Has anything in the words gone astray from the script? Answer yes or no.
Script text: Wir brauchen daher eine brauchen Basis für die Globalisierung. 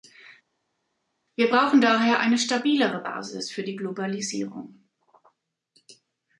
yes